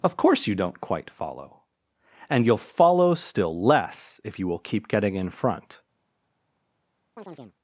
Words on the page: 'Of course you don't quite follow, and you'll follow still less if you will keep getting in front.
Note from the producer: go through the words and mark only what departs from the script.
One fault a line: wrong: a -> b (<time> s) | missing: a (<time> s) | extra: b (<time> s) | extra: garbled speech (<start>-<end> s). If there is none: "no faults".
no faults